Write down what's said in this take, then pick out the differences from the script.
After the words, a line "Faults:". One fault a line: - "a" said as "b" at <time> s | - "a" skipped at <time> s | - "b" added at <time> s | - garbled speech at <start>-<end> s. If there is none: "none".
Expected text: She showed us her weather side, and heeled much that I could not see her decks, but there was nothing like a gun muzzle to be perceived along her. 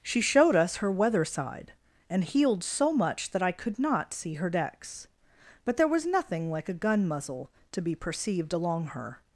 She showed us her weather side, and heeled so much that I could not see her decks, but there was nothing like a gun muzzle to be perceived along her.
Faults:
- "so" added at 2.6 s